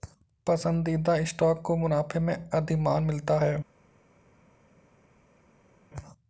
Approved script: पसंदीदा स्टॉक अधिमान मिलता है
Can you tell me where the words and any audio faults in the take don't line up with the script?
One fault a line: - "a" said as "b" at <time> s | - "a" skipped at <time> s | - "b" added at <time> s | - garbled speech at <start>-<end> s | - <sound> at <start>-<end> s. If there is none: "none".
- "को मुनाफे में" added at 1.6 s